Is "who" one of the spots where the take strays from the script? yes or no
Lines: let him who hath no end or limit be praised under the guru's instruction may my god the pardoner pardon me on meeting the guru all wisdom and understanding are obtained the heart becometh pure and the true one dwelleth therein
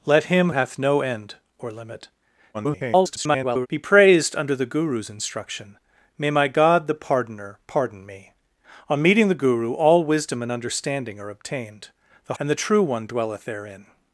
yes